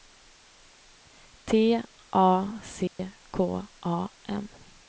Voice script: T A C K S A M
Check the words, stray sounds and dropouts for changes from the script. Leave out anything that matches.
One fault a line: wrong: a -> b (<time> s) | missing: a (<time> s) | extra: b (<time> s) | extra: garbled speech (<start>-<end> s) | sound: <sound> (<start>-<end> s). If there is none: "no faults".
sound: dropout (2.9-3.0 s)
missing: S (3.7 s)